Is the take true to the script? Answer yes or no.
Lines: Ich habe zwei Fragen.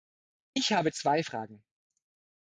yes